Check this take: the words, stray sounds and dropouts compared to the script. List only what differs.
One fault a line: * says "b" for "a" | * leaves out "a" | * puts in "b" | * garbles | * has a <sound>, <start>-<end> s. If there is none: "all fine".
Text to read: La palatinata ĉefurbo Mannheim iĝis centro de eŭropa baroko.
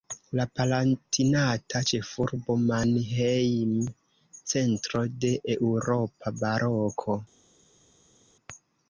* leaves out "iĝis"